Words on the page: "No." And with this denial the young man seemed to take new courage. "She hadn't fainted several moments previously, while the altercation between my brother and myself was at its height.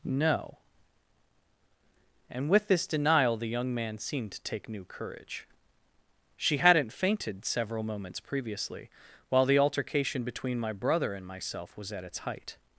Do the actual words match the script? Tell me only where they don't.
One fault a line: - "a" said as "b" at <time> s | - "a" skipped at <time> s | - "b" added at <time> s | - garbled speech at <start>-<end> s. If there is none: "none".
none